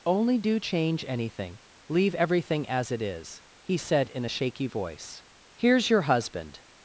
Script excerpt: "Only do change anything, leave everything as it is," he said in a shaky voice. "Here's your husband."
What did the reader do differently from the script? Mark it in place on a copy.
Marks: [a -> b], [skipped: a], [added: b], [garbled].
"Only do change anything, leave everything as it is," he said in a shaky voice. "Here's your husband."